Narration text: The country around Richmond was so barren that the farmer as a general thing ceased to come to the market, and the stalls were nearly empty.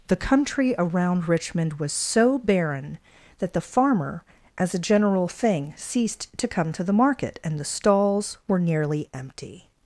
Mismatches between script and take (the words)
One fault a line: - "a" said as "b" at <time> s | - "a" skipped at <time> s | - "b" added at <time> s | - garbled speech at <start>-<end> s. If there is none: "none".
none